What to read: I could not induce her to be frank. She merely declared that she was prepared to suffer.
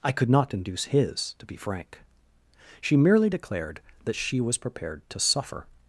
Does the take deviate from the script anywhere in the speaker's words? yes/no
yes